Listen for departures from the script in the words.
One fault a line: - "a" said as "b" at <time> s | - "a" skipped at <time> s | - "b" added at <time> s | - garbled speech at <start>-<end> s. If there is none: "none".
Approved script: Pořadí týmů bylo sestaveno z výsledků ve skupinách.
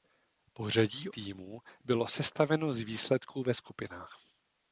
none